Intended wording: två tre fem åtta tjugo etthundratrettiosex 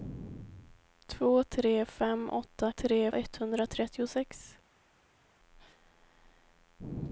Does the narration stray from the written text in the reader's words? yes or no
yes